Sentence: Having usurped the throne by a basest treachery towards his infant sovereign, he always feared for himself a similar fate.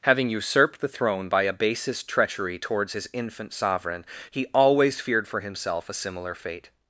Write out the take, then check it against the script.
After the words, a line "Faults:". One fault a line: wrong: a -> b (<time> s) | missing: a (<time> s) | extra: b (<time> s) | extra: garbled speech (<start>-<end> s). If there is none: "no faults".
Having usurped the throne by a basest treachery towards his infant sovereign, he always feared for himself a similar fate.
Faults:
no faults